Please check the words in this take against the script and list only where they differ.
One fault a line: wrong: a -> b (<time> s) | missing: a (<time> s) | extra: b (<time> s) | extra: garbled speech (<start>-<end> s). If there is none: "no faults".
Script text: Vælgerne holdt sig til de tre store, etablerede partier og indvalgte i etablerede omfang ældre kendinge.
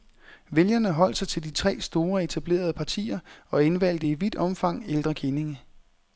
wrong: etablerede -> vidt (4.1 s)